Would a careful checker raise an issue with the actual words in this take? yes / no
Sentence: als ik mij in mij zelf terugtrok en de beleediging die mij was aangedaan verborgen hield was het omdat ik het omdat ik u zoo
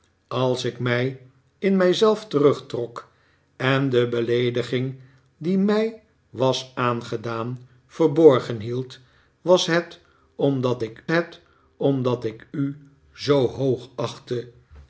no